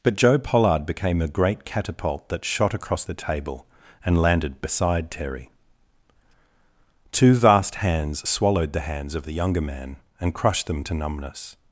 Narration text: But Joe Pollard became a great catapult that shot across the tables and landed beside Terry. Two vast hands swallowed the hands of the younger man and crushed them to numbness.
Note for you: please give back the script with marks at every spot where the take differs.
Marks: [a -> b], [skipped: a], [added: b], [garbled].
But Joe Pollard became a great catapult that shot across the [tables -> table] and landed beside Terry. Two vast hands swallowed the hands of the younger man and crushed them to numbness.